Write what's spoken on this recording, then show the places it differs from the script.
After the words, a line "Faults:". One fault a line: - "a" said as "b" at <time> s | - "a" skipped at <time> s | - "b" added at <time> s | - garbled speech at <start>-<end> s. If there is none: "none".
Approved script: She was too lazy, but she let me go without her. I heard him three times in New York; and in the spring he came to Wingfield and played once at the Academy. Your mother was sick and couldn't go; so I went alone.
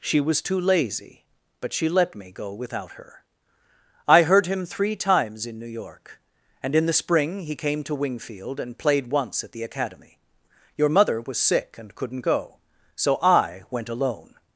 She was too lazy, but she let me go without her. I heard him three times in New York; and in the spring he came to Wingfield and played once at the Academy. Your mother was sick and couldn't go; so I went alone.
Faults:
none